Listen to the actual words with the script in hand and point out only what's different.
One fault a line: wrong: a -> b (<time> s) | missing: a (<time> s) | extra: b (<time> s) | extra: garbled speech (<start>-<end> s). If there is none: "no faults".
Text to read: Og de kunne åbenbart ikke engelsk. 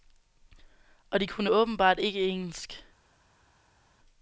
no faults